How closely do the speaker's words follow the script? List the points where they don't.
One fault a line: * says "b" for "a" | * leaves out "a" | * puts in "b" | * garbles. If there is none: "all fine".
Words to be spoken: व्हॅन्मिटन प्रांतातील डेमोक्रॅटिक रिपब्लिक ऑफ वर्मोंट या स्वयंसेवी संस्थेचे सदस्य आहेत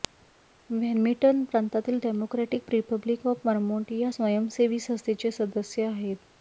all fine